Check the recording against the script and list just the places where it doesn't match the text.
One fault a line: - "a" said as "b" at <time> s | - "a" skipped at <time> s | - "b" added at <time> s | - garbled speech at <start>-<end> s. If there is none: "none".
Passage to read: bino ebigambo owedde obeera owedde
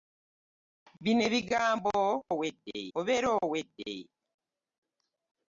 none